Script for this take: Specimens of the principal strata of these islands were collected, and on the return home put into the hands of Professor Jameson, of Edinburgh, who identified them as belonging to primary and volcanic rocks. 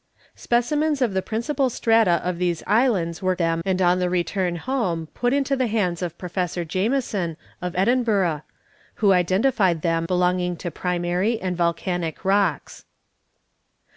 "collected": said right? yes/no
no